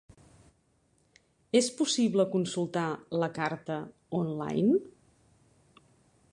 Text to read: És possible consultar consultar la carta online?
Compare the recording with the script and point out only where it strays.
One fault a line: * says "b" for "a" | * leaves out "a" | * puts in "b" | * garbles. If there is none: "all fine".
* leaves out "consultar"